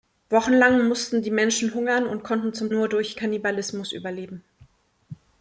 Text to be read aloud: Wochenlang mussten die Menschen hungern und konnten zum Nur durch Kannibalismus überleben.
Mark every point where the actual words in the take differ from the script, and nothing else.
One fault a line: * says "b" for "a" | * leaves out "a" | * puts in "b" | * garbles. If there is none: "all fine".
all fine